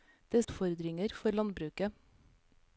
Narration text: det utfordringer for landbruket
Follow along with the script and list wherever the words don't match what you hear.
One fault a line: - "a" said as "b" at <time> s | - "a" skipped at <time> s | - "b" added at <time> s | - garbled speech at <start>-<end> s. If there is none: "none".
none